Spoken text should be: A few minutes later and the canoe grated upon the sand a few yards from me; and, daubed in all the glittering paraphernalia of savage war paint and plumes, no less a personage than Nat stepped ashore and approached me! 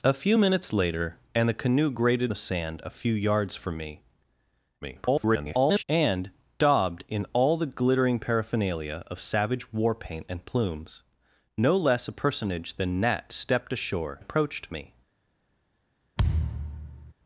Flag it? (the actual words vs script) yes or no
yes